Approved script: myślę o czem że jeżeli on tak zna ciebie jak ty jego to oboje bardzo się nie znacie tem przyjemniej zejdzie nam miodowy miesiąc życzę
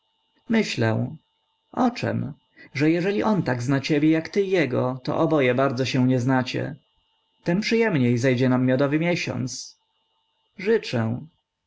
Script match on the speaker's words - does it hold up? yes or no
yes